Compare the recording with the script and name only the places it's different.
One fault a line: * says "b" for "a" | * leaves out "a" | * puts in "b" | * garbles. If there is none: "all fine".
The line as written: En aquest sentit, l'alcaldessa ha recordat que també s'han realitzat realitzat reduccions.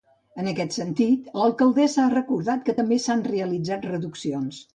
* leaves out "realitzat"